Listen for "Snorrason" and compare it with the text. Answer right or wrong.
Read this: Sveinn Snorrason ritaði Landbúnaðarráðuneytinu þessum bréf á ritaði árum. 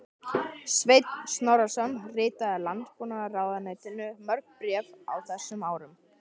right